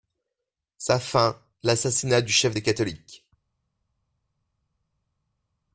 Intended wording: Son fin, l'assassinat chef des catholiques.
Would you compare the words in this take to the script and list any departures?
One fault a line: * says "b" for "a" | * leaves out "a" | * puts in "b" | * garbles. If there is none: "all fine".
* says "Sa" for "Son"
* puts in "du"